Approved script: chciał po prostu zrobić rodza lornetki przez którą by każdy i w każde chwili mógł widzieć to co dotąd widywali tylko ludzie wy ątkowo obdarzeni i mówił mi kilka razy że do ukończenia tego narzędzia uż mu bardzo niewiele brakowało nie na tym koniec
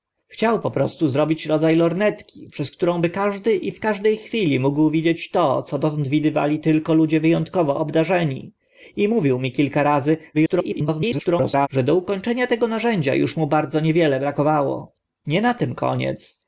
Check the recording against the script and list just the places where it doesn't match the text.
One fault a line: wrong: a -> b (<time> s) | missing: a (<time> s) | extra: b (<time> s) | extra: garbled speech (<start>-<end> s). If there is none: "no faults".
extra: garbled speech (10.3-11.7 s)